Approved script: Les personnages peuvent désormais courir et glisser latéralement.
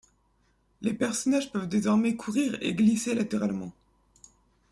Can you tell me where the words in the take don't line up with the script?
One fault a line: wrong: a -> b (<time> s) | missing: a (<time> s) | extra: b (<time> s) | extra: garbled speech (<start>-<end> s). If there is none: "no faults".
no faults